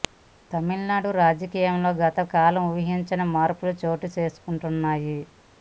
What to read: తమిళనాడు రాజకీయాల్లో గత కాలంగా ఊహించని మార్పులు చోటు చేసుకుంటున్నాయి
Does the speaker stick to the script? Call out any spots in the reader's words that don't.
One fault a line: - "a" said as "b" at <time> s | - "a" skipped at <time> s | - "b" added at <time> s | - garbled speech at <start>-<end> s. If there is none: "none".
none